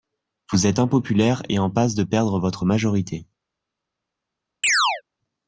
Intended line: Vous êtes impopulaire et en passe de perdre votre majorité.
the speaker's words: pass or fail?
pass